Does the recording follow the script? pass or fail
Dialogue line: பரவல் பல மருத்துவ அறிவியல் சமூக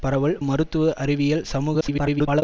fail